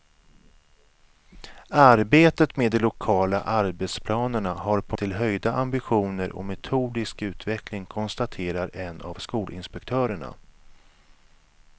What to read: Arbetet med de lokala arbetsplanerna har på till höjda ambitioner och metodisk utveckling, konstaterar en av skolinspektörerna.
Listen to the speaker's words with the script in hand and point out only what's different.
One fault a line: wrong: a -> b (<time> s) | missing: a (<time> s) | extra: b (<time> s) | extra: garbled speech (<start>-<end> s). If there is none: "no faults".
no faults